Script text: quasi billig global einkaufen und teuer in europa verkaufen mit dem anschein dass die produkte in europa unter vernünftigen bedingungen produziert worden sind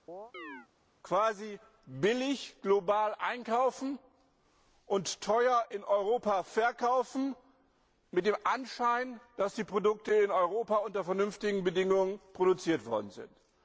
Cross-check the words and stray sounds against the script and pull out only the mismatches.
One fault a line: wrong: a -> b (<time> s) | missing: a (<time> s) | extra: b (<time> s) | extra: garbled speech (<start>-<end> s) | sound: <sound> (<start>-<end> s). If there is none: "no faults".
sound: chirp (0.1-0.7 s)